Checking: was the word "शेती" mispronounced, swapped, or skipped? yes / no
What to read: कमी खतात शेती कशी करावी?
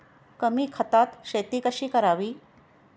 no